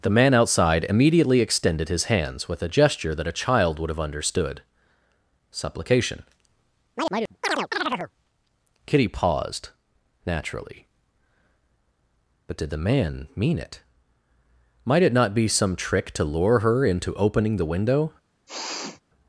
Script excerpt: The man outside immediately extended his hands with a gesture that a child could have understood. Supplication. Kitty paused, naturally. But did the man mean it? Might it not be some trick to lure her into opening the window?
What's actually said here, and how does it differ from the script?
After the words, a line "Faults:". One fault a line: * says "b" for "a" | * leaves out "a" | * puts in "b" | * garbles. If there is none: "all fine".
The man outside immediately extended his hands with a gesture that a child would have understood. Supplication. Kitty paused, naturally. But did the man mean it? Might it not be some trick to lure her into opening the window?
Faults:
* says "would" for "could"